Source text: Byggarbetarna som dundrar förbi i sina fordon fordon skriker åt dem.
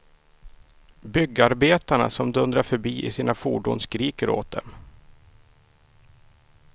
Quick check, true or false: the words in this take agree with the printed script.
false